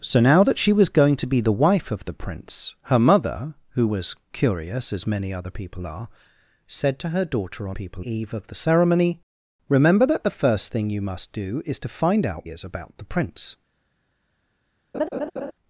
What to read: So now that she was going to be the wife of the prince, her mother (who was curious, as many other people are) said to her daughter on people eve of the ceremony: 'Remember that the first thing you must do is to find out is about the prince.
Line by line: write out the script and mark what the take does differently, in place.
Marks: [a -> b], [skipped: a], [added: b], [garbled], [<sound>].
So now that she was going to be the wife of the prince, her mother (who was curious, as many other people are) said to her daughter on people eve of the ceremony: 'Remember that the first thing you must do is to find out is about the prince. [laugh]